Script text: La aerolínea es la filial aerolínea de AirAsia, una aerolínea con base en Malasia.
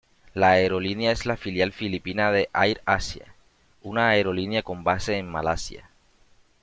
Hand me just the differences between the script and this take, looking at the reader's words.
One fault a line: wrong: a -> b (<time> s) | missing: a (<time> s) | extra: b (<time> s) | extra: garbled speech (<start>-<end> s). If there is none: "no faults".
wrong: aerolínea -> filipina (1.7 s)